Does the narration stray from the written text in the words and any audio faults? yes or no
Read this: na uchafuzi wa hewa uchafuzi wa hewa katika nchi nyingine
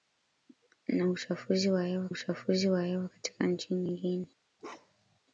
yes